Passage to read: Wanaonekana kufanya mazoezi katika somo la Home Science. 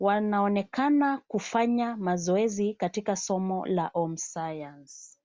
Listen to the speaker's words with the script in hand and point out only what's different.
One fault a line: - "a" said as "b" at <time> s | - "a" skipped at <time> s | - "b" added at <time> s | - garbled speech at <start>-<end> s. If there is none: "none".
none